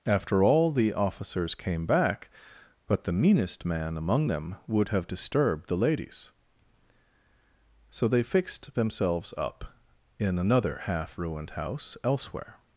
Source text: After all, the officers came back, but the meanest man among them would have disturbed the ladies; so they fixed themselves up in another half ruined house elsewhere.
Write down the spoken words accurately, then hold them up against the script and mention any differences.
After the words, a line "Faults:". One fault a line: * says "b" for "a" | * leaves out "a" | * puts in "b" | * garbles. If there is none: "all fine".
After all, the officers came back, but the meanest man among them would have disturbed the ladies; so they fixed themselves up in another half ruined house elsewhere.
Faults:
all fine